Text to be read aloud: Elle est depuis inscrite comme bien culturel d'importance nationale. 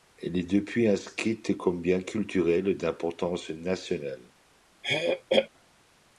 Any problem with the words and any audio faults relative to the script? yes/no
yes